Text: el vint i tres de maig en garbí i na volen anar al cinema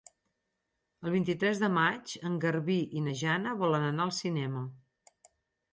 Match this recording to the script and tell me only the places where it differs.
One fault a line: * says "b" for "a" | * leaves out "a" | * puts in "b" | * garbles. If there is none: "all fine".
* puts in "jana"